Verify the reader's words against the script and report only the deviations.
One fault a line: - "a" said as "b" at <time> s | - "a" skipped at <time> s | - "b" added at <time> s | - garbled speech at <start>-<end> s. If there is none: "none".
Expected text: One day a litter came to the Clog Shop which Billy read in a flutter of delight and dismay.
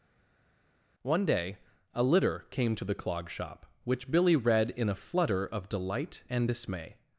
none